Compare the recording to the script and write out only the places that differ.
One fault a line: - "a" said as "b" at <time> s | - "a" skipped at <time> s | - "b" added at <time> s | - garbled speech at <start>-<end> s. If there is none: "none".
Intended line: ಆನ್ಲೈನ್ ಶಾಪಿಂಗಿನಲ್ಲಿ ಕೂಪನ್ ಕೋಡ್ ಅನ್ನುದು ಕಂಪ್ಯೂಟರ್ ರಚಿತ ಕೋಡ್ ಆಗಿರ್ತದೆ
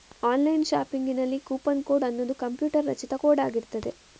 none